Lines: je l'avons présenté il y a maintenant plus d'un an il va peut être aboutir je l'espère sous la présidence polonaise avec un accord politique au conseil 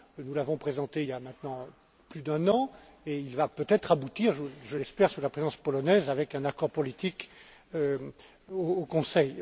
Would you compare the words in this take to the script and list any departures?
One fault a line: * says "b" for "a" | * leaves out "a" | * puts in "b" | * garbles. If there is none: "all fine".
* says "nous" for "je"
* puts in "et"